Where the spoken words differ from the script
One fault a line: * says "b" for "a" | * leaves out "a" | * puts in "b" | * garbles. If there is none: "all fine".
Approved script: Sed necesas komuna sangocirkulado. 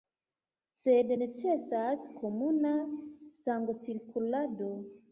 all fine